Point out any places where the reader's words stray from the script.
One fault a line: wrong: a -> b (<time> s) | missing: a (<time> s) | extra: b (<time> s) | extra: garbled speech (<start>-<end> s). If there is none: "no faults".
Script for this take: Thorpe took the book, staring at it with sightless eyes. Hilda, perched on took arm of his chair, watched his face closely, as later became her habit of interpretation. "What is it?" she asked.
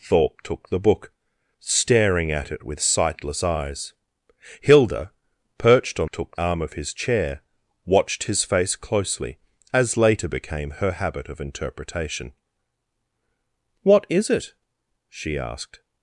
no faults